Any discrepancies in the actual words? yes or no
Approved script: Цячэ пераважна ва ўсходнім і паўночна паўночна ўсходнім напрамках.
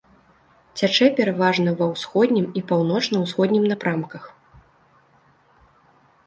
yes